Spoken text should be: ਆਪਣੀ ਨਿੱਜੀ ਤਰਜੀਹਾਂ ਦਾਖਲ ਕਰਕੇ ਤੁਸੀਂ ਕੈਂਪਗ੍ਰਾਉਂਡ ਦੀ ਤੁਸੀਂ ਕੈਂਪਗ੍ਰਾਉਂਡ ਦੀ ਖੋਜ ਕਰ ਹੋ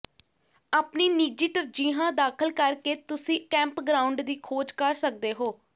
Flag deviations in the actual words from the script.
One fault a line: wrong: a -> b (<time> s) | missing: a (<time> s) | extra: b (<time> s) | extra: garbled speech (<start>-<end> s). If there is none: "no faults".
missing: ਤੁਸੀਂ ਕੈਂਪਗ੍ਰਾਉਂਡ ਦੀ (4.3 s)
extra: ਸਕਦੇ (5.0 s)